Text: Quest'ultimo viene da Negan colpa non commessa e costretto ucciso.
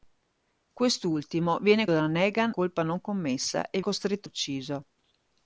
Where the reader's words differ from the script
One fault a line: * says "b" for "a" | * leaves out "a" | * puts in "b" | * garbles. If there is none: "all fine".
all fine